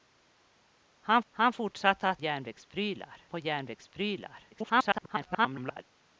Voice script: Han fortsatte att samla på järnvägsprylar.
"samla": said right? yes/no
no